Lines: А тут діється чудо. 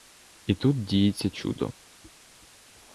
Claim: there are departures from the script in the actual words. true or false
true